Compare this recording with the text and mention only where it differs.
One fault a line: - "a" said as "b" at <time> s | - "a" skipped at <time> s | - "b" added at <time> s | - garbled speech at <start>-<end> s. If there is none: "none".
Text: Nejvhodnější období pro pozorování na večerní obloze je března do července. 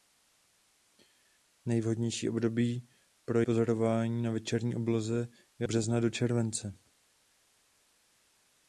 none